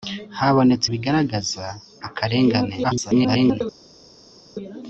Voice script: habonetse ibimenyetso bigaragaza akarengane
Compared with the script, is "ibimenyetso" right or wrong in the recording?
wrong